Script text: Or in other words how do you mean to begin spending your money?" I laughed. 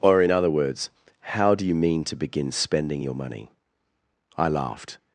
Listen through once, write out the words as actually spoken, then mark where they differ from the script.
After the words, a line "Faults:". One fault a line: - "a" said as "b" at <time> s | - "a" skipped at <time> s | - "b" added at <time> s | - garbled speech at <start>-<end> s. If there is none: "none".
Or in other words how do you mean to begin spending your money?" I laughed.
Faults:
none